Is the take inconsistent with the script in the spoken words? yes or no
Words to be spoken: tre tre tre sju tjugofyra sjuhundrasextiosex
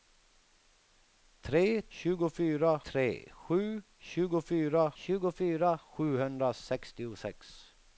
yes